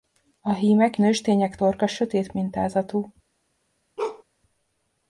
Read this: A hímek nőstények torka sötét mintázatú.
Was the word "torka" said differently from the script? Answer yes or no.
no